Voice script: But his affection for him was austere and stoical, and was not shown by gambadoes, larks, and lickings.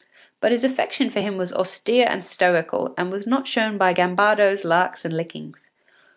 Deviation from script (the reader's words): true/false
false